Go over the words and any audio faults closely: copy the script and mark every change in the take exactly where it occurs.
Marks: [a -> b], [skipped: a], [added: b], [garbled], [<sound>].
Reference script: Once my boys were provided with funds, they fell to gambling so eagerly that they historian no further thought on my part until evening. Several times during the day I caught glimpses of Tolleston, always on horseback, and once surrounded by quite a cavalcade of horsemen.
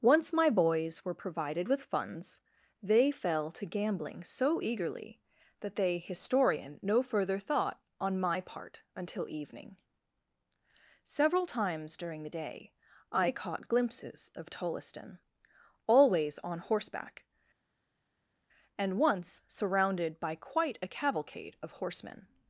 Once my boys were provided with funds, they fell to gambling so eagerly that they historian no further thought on my part until evening. Several times during the day I caught glimpses of Tolleston, always on horseback, and once surrounded by quite a cavalcade of horsemen.